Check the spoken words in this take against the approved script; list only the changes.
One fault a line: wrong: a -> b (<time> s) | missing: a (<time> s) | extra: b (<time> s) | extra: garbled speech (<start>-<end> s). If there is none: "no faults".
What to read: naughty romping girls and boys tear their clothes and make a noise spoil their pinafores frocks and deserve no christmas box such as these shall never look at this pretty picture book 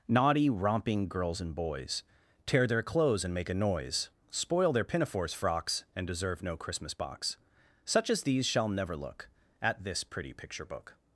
no faults